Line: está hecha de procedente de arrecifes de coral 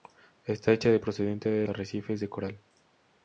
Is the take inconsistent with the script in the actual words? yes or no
no